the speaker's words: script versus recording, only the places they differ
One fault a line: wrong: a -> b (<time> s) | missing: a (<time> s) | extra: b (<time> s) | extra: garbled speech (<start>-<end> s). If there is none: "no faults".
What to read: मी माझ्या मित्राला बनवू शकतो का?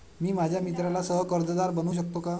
extra: सह कर्जदार (1.0 s)